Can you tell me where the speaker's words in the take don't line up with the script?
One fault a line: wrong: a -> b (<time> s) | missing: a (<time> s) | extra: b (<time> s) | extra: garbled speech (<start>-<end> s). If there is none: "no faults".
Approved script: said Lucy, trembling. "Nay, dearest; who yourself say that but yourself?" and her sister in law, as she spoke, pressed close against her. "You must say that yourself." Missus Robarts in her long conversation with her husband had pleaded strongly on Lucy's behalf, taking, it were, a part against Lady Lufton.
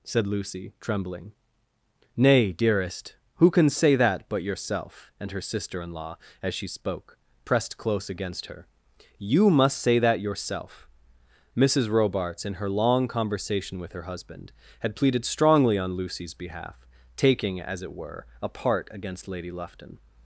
wrong: yourself -> can (3.5 s)
extra: as (17.6 s)